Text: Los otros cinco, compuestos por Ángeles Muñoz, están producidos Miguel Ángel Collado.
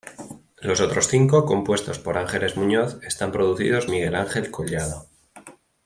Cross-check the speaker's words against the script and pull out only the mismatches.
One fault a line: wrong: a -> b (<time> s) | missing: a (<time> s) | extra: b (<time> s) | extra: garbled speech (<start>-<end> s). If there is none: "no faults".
no faults